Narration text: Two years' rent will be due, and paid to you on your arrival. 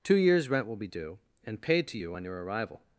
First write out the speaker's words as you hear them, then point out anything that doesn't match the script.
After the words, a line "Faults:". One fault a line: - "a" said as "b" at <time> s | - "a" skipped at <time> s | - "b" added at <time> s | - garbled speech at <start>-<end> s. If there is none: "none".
Two years' rent will be due, and paid to you on your arrival.
Faults:
none